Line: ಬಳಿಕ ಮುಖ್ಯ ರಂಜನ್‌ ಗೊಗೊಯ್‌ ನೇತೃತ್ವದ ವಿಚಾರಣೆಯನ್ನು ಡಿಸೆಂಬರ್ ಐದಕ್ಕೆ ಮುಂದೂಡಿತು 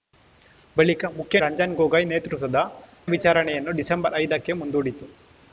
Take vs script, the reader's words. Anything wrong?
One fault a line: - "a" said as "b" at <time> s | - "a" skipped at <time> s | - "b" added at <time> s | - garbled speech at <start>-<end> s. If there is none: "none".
none